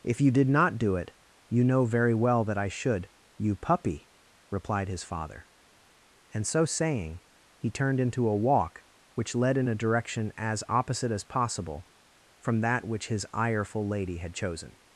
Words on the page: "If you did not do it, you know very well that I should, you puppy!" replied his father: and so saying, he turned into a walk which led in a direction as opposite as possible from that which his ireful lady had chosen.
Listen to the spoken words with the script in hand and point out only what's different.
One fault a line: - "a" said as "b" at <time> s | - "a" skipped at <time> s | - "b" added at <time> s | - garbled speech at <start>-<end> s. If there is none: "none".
none